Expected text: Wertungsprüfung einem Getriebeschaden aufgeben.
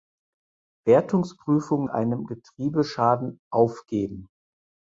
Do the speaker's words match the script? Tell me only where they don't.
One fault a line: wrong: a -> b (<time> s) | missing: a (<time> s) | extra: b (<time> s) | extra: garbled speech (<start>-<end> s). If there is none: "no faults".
no faults